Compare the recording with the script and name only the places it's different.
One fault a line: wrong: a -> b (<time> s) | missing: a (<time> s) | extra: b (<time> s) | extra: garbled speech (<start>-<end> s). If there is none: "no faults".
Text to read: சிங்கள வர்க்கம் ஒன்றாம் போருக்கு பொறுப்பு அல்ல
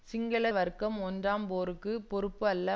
no faults